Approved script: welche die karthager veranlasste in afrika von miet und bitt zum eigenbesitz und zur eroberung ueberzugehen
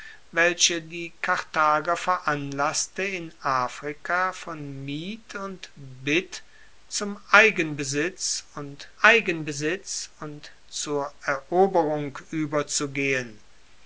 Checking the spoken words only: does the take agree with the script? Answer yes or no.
no